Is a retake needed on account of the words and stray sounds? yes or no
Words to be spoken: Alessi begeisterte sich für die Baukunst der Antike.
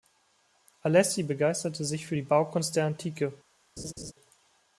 yes